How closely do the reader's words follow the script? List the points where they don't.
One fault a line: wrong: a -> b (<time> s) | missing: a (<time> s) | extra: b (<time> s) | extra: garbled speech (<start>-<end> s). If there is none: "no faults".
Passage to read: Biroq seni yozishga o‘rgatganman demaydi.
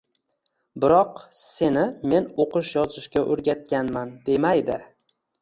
extra: men o‘qish (2.1 s)